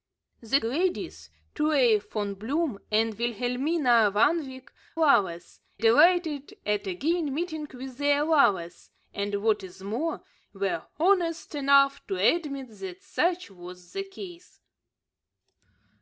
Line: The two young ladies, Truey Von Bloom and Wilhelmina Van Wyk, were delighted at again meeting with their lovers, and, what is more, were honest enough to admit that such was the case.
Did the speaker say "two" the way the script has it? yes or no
no